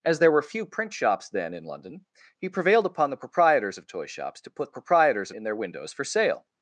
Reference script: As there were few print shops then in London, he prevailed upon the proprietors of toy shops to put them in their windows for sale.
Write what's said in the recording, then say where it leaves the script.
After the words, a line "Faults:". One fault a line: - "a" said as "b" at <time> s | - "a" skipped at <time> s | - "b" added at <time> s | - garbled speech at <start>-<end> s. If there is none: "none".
As there were few print shops then in London, he prevailed upon the proprietors of toy shops to put proprietors in their windows for sale.
Faults:
- "them" said as "proprietors" at 4.7 s